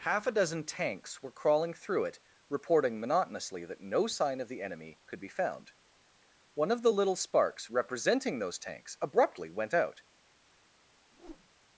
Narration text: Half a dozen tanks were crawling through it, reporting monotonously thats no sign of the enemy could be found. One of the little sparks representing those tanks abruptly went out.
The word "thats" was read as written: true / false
false